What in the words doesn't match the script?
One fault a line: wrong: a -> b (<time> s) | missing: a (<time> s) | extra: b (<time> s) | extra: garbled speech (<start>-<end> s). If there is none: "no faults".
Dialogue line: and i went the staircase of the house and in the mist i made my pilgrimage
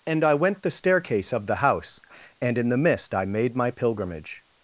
no faults